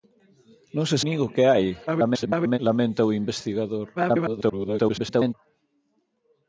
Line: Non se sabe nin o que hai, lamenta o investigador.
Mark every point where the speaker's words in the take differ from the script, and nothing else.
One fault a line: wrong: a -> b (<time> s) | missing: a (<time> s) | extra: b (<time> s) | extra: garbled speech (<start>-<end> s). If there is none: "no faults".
missing: sabe (1.0 s)
extra: garbled speech (1.9-2.6 s)
extra: garbled speech (4.0-5.3 s)